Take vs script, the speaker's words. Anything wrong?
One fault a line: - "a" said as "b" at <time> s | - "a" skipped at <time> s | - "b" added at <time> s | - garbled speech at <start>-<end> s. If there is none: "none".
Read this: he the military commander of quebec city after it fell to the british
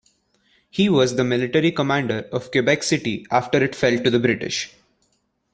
- "was" added at 0.9 s